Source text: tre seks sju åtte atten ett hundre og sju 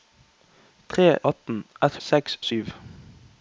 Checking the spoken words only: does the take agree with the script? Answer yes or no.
no